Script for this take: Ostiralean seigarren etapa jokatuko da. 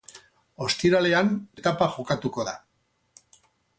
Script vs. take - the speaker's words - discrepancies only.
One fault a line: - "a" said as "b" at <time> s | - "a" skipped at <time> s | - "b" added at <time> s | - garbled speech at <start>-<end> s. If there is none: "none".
- "seigarren" skipped at 1.3 s